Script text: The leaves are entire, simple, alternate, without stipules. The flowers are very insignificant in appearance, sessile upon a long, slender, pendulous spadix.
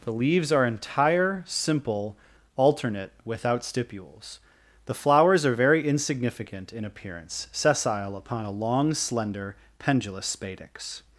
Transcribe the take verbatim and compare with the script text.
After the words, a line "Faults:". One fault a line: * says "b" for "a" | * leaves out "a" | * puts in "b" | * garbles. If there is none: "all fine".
The leaves are entire, simple, alternate, without stipules. The flowers are very insignificant in appearance, sessile upon a long, slender, pendulous spadix.
Faults:
all fine